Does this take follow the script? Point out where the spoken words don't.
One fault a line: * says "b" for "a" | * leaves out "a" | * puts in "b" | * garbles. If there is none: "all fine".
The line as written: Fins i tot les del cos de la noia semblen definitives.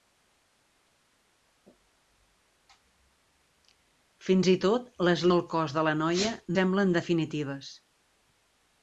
all fine